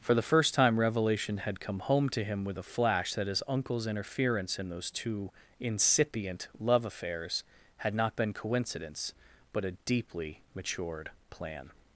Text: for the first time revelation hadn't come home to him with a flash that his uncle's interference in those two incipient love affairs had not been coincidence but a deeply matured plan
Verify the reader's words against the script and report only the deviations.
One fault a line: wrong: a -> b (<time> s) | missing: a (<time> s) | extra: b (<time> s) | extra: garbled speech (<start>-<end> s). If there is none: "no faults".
wrong: hadn't -> had (1.4 s)